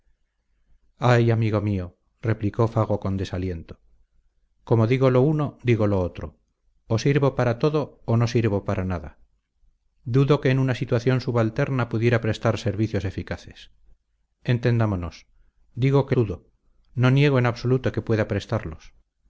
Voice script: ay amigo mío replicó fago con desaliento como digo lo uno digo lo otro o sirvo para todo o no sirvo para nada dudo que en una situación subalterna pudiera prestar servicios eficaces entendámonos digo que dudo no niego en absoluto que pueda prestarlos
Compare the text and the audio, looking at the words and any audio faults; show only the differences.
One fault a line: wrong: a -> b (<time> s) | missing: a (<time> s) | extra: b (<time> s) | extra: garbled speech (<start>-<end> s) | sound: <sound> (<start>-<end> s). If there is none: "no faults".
no faults